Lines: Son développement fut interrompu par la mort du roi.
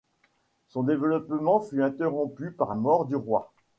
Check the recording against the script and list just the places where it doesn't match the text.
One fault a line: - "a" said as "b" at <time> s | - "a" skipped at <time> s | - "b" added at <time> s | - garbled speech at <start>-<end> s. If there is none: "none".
- "la" skipped at 2.7 s